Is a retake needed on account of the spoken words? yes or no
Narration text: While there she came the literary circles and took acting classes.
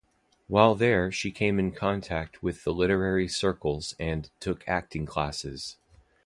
yes